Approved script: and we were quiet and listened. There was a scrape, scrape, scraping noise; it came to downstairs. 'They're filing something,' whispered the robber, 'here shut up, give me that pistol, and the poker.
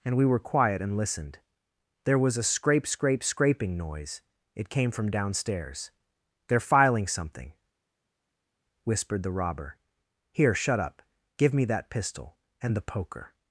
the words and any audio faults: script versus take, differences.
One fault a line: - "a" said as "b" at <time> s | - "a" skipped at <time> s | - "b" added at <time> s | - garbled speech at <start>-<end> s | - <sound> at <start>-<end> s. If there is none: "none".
- "to" said as "from" at 4.9 s